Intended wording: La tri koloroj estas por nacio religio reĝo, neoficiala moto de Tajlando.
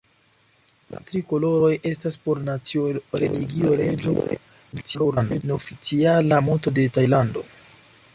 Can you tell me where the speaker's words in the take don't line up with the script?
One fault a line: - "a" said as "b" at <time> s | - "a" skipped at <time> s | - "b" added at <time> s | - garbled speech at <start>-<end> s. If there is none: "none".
- garbled speech at 4.7-5.4 s